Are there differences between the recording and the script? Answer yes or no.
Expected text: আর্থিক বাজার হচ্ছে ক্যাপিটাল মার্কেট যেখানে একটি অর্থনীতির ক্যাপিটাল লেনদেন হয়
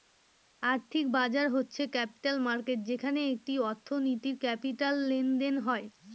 no